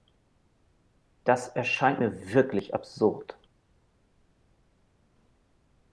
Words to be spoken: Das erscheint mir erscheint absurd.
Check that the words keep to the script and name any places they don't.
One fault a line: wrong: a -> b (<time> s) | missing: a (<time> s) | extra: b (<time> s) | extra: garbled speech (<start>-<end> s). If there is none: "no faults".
wrong: erscheint -> wirklich (2.3 s)